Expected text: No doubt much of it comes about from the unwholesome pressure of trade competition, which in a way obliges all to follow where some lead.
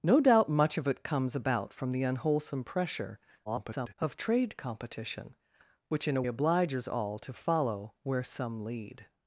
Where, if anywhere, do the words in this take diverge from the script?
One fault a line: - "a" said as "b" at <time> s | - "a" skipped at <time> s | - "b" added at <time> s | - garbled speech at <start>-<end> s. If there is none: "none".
- garbled speech at 3.5-3.9 s
- "way" skipped at 6.2 s